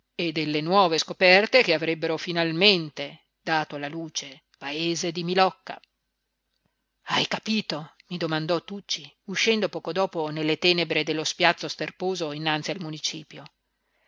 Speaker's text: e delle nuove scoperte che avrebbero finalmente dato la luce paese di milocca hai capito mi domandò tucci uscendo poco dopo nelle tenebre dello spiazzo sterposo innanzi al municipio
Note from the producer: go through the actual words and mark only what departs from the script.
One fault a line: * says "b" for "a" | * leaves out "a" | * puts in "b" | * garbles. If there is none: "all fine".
all fine